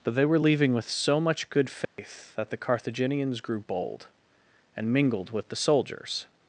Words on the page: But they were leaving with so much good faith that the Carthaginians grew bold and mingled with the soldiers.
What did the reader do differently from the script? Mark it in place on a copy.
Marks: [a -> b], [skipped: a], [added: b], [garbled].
But they were leaving with so much good faith that the Carthaginians grew bold and mingled with the soldiers.